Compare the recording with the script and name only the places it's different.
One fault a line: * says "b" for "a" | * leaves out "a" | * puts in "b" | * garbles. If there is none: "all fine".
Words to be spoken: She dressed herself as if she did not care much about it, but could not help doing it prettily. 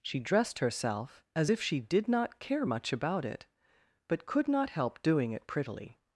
all fine